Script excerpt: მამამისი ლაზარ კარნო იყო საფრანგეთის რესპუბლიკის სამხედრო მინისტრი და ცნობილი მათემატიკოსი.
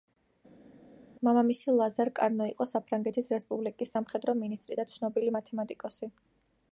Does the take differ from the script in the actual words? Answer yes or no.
no